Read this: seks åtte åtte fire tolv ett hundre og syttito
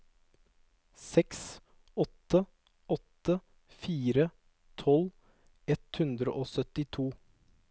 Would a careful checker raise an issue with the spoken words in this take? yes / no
no